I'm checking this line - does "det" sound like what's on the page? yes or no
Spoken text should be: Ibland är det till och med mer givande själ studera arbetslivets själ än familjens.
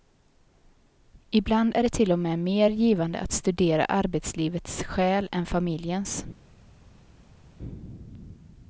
yes